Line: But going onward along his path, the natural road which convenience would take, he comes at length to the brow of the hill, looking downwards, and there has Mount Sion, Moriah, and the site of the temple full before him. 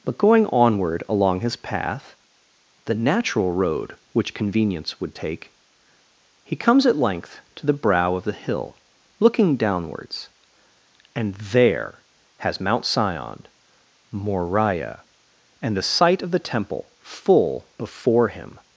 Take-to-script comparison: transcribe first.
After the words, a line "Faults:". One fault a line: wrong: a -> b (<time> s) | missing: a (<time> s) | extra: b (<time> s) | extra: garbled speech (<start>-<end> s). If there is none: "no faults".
But going onward along his path, the natural road which convenience would take, he comes at length to the brow of the hill, looking downwards, and there has Mount Sion, Moriah, and the site of the temple full before him.
Faults:
no faults